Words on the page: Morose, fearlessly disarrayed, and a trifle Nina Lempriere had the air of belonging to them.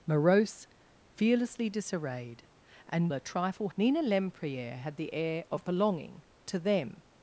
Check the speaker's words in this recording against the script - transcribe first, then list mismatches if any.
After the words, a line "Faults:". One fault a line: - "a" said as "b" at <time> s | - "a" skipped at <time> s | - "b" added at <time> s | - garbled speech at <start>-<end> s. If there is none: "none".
Morose, fearlessly disarrayed, and a trifle Nina Lempriere had the air of belonging to them.
Faults:
none